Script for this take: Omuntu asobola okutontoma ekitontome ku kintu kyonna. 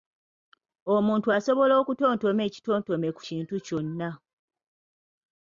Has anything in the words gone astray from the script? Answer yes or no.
no